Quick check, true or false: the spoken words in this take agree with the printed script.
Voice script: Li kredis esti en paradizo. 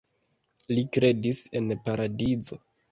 false